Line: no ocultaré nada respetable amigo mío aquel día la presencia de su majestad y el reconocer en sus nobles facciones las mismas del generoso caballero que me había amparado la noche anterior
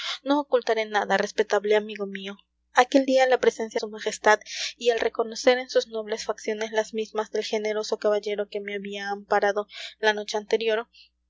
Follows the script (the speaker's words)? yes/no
no